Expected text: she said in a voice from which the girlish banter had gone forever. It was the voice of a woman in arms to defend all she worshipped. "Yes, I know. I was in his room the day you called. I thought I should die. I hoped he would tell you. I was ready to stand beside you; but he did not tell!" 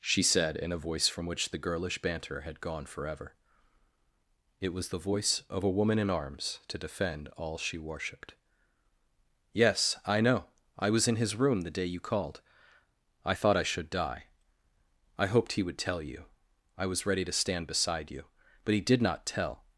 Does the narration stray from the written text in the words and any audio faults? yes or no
no